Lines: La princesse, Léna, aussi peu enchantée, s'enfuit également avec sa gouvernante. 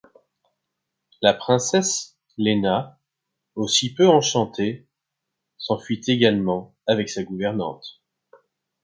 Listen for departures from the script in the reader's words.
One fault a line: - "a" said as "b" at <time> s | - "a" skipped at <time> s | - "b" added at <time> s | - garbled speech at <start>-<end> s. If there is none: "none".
none